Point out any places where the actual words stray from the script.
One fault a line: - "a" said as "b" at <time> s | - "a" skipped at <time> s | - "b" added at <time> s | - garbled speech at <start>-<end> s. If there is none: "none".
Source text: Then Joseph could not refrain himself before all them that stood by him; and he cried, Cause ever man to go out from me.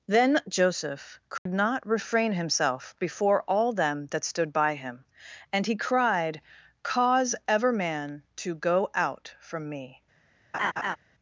none